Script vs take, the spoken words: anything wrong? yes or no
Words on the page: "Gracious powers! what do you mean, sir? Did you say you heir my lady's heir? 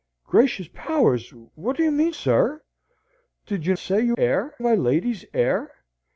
no